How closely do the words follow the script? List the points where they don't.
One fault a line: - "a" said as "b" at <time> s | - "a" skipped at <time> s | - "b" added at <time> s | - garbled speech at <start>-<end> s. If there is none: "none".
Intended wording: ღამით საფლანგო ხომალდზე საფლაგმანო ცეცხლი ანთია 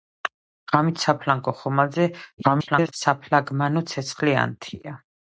- garbled speech at 2.4-2.9 s